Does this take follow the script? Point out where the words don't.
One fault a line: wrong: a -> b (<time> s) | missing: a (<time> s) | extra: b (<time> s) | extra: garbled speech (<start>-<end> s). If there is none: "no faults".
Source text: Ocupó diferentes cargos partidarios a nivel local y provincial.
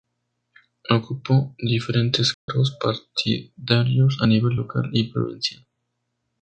no faults